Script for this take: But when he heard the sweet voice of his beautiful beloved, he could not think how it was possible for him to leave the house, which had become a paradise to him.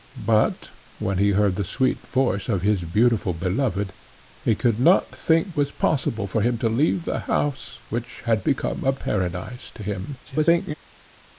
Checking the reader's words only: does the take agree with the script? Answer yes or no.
no